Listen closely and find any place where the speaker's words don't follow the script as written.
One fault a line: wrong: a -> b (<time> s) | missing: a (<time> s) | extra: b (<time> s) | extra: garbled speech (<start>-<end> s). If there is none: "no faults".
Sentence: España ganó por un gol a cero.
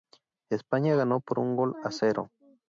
no faults